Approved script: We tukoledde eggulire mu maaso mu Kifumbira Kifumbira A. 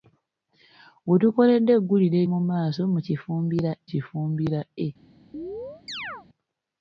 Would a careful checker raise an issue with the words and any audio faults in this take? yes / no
yes